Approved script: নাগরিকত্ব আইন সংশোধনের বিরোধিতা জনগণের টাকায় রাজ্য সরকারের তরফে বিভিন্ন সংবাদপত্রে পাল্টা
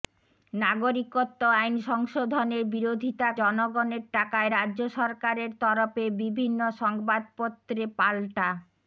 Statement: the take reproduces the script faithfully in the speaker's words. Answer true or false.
true